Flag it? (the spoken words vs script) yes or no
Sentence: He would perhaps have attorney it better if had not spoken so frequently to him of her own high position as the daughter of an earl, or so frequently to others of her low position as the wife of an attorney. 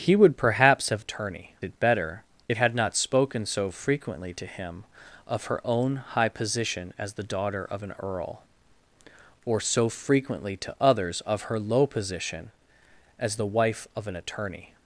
no